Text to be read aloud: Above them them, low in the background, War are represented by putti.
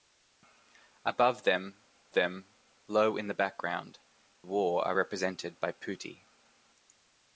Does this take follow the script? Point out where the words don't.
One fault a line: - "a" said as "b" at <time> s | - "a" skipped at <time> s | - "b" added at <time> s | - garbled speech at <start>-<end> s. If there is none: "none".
none